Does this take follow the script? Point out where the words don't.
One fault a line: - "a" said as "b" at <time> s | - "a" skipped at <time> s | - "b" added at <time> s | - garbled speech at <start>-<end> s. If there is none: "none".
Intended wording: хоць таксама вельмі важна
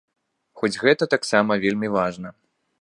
- "гэта" added at 0.8 s